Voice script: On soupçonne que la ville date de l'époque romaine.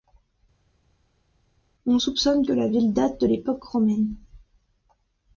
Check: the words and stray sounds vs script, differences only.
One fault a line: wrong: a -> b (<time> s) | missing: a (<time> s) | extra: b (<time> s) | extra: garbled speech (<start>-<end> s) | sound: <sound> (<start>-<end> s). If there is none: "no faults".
no faults